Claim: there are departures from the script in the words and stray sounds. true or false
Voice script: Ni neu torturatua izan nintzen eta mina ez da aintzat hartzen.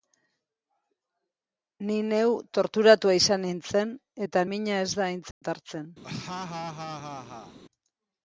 true